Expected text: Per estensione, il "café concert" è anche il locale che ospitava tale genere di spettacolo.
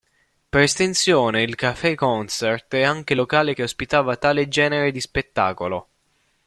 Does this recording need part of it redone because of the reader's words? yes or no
no